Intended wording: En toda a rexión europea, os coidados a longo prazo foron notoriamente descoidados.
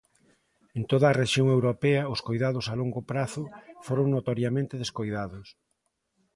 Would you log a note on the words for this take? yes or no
no